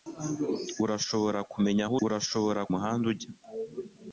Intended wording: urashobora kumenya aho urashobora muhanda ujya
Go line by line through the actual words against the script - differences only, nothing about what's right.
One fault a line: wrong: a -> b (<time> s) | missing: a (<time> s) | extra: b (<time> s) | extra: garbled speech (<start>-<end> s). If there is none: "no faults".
no faults